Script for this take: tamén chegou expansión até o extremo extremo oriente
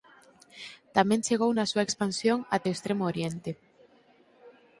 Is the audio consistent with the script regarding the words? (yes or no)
no